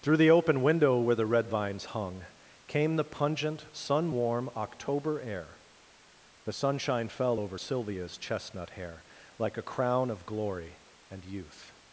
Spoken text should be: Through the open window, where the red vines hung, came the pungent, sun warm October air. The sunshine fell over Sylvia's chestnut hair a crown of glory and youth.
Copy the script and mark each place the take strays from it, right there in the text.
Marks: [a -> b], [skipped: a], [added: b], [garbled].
Through the open window, where the red vines hung, came the pungent, sun warm October air. The sunshine fell over Sylvia's chestnut hair [added: like] a crown of glory and youth.